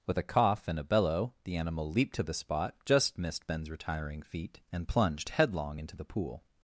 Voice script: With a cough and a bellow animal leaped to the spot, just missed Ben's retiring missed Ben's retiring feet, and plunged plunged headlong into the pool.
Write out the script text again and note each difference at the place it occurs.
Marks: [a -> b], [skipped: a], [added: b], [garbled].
With a cough and a bellow [added: the] animal leaped to the spot, just missed Ben's retiring [skipped: missed Ben's retiring] feet, and plunged [skipped: plunged] headlong into the pool.